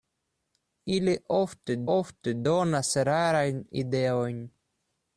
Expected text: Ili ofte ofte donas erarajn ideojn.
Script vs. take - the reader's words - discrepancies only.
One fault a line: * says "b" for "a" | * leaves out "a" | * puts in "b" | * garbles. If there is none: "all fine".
all fine